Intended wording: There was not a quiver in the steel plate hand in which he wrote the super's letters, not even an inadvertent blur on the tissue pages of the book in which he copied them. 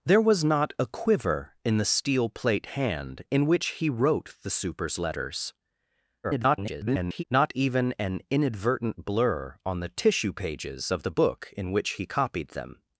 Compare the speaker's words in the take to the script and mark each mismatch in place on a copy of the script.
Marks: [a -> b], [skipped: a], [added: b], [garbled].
There was not a quiver in the steel plate hand in which he wrote the super's letters, [garbled] not even an inadvertent blur on the tissue pages of the book in which he copied them.